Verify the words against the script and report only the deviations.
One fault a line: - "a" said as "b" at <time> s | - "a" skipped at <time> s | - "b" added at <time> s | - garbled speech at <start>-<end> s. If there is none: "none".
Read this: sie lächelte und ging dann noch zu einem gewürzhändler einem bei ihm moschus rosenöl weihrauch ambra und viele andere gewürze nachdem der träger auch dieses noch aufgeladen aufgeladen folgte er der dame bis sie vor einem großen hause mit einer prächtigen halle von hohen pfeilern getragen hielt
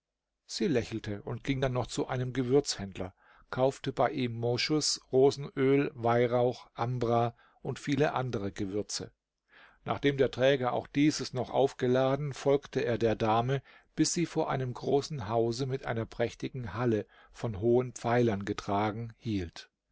- "einem" said as "kaufte" at 3.5 s
- "aufgeladen" skipped at 12.3 s